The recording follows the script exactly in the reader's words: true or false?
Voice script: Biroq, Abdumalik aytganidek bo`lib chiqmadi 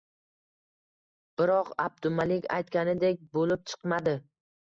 true